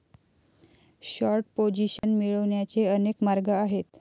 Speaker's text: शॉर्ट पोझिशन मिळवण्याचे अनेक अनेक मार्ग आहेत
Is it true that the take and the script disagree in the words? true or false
true